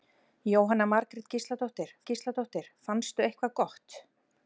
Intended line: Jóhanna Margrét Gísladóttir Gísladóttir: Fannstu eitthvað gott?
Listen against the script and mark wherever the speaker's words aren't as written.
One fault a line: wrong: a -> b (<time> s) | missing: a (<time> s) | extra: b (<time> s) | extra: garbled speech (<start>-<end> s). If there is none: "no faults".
no faults